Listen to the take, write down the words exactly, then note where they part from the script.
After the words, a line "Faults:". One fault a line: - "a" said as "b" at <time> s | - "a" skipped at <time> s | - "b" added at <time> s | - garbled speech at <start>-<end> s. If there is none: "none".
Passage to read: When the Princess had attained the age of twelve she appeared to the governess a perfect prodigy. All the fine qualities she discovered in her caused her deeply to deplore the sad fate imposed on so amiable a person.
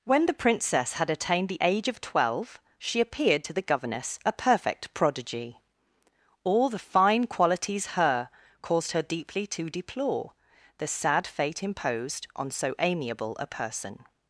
When the Princess had attained the age of twelve she appeared to the governess a perfect prodigy. All the fine qualities her caused her deeply to deplore the sad fate imposed on so amiable a person.
Faults:
- "she discovered in" skipped at 7.9 s